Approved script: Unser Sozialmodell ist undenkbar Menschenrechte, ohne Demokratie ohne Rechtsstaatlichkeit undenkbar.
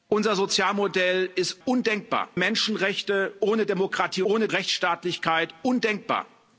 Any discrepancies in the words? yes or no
no